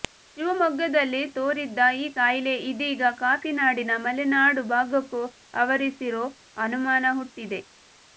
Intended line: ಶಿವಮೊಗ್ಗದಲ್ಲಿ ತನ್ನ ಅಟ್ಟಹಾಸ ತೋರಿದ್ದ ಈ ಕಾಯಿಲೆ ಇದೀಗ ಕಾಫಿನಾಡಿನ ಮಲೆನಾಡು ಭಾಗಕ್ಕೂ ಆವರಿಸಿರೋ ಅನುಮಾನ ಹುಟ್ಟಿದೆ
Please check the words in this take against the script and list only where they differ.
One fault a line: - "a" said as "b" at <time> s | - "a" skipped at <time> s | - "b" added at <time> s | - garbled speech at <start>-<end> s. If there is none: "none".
- "ತನ್ನ ಅಟ್ಟಹಾಸ" skipped at 1.3 s